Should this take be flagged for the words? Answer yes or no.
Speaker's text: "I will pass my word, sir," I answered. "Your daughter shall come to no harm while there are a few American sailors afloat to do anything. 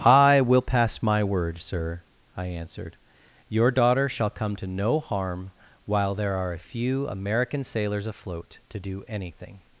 no